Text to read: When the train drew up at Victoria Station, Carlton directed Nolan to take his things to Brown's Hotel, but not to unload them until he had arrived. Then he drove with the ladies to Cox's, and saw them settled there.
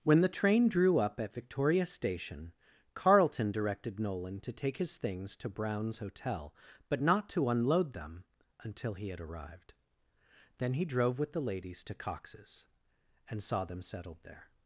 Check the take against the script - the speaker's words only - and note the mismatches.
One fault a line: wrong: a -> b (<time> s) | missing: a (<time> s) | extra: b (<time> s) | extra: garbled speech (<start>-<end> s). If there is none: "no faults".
no faults